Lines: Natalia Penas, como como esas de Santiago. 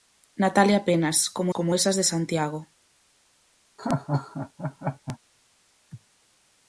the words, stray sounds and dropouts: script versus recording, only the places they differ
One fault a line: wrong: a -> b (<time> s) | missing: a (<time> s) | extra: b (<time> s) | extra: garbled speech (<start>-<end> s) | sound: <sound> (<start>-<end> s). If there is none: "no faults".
sound: laugh (3.8-5.2 s)